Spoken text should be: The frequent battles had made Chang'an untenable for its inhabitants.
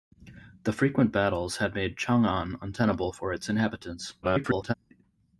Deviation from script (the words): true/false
true